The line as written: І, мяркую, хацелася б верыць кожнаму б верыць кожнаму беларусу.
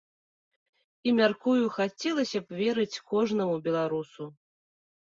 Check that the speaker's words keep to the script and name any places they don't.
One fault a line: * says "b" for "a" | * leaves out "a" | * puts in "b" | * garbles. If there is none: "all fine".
* leaves out "б верыць кожнаму"